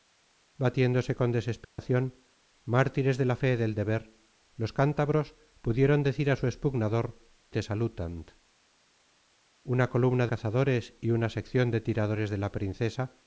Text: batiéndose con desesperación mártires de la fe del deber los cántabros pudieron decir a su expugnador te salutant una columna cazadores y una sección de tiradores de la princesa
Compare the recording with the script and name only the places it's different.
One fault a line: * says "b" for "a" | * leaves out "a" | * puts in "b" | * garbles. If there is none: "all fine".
all fine